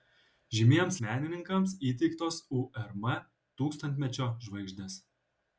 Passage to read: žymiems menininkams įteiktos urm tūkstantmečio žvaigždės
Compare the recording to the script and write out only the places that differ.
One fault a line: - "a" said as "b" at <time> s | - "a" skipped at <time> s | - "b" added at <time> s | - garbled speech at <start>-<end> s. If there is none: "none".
none